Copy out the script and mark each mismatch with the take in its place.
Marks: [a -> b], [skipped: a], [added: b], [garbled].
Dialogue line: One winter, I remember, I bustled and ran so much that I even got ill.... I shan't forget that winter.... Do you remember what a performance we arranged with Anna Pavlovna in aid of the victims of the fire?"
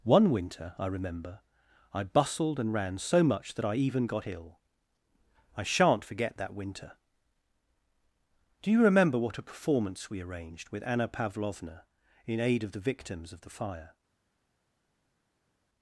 One winter, I remember, I bustled and ran so much that I even got ill.... I shan't forget that winter.... Do you remember what a performance we arranged with Anna Pavlovna in aid of the victims of the fire?"